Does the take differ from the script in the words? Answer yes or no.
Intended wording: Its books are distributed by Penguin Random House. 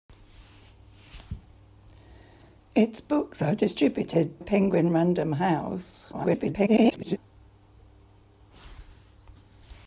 yes